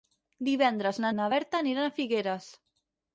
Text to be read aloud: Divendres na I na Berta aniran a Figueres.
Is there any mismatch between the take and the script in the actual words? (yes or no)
no